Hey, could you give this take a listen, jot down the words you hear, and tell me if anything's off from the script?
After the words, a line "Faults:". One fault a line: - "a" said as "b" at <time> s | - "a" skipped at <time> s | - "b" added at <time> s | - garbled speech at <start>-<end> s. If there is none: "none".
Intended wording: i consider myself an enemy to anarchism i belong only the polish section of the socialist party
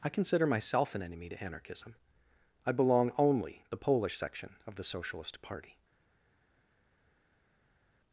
i consider myself an enemy to anarchism i belong only the polish section of the socialist party
Faults:
none